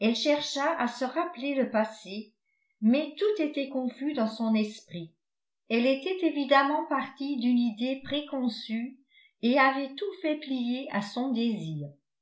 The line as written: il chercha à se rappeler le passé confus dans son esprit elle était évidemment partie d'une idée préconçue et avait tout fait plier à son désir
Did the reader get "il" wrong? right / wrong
wrong